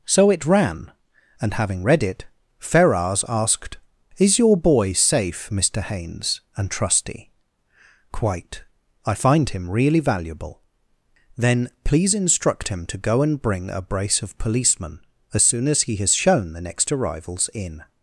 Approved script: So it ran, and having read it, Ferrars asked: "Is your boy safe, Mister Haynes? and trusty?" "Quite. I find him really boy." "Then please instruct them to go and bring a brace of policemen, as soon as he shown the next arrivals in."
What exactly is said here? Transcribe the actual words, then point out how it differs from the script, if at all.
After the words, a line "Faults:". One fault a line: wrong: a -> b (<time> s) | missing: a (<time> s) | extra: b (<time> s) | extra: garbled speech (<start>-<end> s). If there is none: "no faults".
So it ran, and having read it, Ferrars asked: "Is your boy safe, Mister Haynes? and trusty?" "Quite. I find him really valuable." "Then please instruct him to go and bring a brace of policemen, as soon as he has shown the next arrivals in."
Faults:
wrong: boy -> valuable (10.0 s)
wrong: them -> him (12.7 s)
extra: has (16.0 s)